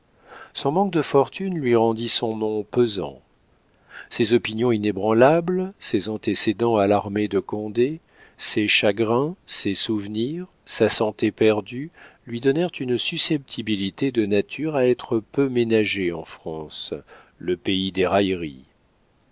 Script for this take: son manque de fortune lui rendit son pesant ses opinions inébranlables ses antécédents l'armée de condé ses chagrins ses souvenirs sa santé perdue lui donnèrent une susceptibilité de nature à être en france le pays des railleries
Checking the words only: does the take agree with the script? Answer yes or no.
no